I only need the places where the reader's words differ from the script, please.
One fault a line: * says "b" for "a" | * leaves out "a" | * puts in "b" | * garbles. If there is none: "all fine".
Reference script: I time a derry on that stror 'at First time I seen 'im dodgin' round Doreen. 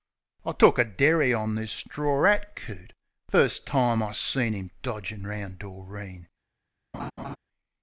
* says "took" for "time"
* says "this" for "that"
* puts in "coot"